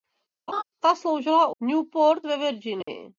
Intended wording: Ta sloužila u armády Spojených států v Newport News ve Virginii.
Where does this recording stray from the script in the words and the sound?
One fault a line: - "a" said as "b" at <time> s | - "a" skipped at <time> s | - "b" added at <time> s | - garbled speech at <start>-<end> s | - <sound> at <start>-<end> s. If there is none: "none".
- laugh at 0.5-0.6 s
- "armády Spojených států" skipped at 1.6 s
- "News" skipped at 2.3 s
- dropout at 2.8-2.9 s